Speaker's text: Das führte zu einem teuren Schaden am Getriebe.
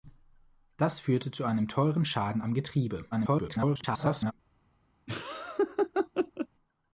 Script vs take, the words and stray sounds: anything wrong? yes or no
yes